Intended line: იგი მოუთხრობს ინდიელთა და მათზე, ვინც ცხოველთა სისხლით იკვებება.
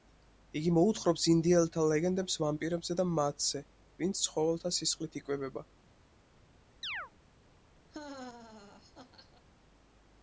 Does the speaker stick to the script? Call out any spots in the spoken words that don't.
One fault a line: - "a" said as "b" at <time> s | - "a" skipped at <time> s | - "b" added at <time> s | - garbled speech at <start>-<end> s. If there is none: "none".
- "ლეგენდებს ვამპირებზე" added at 1.9 s